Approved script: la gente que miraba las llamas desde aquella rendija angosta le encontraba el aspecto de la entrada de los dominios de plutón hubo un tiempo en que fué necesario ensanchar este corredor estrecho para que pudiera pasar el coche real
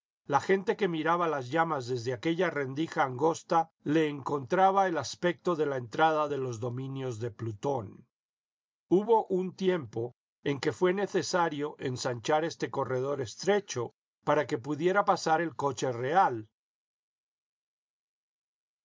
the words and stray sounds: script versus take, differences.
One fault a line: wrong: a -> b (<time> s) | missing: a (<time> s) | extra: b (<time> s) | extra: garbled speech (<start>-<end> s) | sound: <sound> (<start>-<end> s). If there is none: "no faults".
no faults